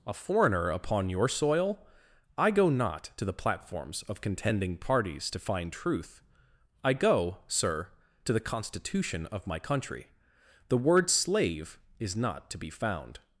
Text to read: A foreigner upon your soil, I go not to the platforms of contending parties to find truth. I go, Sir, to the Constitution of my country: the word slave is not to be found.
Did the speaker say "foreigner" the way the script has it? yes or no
yes